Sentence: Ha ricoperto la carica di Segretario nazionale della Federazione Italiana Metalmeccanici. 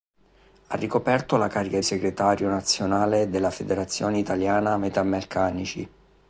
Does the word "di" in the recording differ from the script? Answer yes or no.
yes